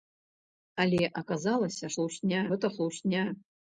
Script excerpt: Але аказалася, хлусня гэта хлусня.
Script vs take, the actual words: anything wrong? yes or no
no